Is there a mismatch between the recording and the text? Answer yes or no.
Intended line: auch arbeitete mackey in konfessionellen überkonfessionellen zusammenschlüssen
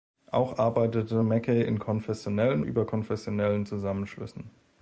no